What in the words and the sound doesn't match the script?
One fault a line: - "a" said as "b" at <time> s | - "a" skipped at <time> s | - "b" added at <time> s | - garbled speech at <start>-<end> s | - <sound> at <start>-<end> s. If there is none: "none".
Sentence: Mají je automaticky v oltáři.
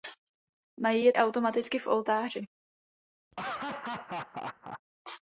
- laugh at 3.3-4.8 s